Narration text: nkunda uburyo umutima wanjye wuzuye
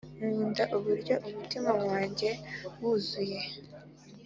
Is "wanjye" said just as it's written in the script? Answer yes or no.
yes